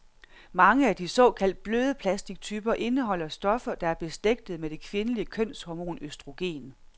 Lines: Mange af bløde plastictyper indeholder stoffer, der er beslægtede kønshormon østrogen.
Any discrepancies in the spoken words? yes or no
yes